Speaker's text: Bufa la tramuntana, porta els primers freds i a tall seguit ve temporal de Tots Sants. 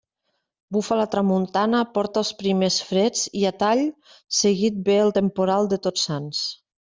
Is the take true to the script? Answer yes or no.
no